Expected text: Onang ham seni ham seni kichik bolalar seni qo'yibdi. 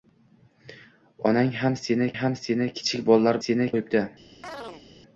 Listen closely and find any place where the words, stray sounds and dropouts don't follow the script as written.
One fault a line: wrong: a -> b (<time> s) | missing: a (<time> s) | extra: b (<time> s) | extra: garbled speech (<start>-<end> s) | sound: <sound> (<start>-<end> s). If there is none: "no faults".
sound: chirp (4.4-4.8 s)